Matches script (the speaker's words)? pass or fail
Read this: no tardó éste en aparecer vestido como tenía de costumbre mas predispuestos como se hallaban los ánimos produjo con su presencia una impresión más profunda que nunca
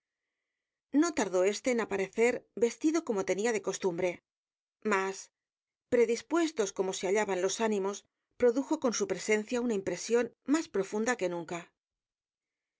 pass